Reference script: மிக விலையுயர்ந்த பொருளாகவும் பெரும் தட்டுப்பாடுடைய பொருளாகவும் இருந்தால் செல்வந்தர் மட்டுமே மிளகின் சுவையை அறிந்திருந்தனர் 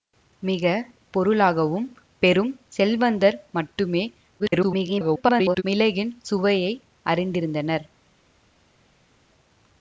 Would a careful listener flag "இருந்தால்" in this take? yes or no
yes